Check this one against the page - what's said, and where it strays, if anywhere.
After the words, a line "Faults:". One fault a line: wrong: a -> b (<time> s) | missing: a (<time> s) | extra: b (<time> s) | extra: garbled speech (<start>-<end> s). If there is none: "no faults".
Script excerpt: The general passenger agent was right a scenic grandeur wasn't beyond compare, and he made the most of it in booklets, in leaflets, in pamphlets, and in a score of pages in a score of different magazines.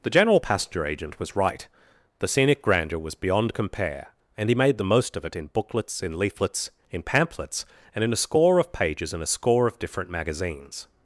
The general passenger agent was right the scenic grandeur was beyond compare, and he made the most of it in booklets, in leaflets, in pamphlets, and in a score of pages in a score of different magazines.
Faults:
wrong: a -> the (2.2 s)
wrong: wasn't -> was (3.0 s)